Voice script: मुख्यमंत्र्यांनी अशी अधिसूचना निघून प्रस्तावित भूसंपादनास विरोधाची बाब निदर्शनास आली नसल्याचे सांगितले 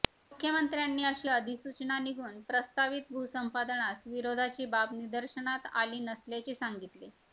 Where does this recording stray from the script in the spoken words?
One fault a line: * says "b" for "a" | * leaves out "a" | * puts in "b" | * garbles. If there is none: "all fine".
all fine